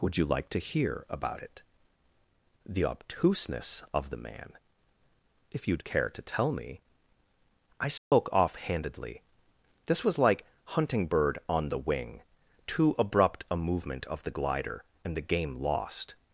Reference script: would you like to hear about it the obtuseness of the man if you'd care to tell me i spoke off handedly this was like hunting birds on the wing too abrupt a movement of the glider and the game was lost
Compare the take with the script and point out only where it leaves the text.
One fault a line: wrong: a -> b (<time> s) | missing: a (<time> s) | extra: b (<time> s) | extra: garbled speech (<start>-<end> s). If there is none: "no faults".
wrong: birds -> bird (11.1 s)
missing: was (15.6 s)